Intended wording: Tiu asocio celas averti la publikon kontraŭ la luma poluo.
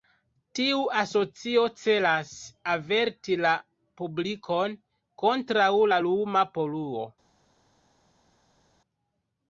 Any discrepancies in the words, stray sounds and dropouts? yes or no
no